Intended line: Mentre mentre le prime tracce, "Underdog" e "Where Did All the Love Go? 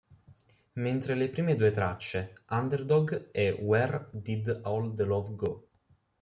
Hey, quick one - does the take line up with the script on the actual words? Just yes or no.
no